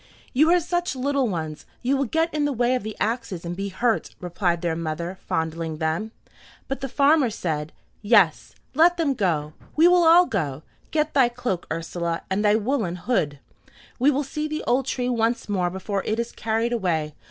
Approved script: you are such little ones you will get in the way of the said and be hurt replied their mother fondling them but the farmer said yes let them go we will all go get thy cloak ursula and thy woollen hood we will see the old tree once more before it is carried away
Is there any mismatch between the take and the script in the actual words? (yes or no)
yes